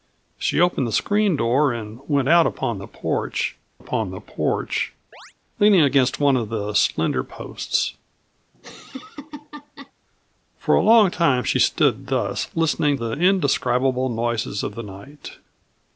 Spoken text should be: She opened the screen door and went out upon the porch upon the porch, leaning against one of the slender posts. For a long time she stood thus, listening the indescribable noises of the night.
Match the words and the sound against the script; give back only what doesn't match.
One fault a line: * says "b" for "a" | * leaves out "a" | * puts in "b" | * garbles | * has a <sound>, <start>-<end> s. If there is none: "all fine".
* has a chirp, 5.1-5.3 s
* has a laugh, 8.5-9.9 s